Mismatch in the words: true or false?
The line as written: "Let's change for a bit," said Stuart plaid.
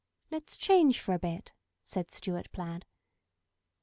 false